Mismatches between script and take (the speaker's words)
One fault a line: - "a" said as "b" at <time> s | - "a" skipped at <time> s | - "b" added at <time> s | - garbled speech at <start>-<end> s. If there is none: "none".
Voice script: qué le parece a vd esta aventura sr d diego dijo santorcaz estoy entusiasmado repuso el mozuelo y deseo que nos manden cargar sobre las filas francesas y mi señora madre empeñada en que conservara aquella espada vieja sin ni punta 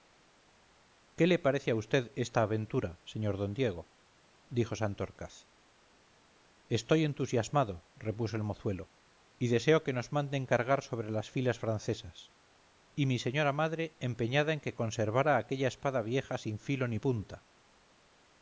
- "filo" added at 16.6 s